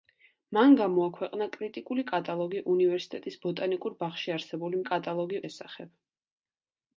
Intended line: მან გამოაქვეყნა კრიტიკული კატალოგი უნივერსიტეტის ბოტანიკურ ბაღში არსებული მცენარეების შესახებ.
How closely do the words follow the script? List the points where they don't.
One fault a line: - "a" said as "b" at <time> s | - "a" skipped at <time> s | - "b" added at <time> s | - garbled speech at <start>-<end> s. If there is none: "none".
- "მცენარეების" said as "კატალოგი" at 4.9 s